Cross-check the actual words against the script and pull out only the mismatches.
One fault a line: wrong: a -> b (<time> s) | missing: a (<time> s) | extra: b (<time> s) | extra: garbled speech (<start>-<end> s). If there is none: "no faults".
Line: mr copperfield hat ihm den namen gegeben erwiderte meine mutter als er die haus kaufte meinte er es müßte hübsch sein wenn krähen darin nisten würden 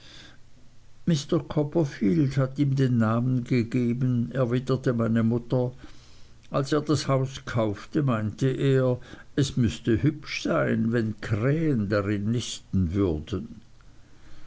wrong: die -> das (6.8 s)